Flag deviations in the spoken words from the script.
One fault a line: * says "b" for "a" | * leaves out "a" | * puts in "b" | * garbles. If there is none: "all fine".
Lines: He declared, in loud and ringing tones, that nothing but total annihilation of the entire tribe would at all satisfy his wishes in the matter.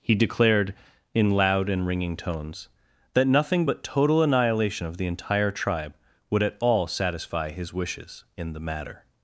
all fine